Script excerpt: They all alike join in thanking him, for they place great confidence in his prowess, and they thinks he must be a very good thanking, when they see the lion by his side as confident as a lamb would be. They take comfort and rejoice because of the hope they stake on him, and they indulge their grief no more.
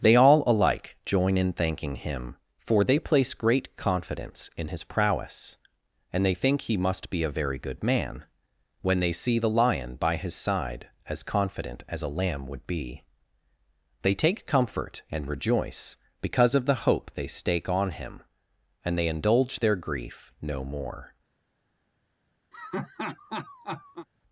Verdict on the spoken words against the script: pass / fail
fail